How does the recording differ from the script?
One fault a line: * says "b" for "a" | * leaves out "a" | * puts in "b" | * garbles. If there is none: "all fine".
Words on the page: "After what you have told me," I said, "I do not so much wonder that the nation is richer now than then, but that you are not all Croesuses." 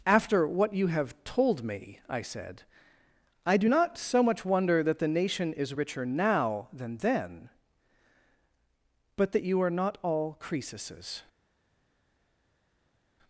all fine